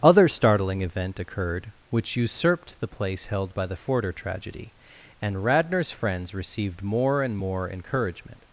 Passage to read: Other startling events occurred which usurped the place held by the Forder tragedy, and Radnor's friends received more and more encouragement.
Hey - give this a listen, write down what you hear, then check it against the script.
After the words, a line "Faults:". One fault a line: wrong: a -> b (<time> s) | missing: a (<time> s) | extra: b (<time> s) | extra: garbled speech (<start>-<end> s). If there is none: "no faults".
Other startling event occurred which usurped the place held by the Forder tragedy, and Radnor's friends received more and more encouragement.
Faults:
wrong: events -> event (0.8 s)